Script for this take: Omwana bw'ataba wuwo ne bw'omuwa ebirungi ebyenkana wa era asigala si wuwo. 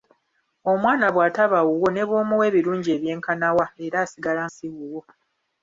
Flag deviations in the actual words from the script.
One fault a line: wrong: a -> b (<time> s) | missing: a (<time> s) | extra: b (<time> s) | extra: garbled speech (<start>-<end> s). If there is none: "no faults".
no faults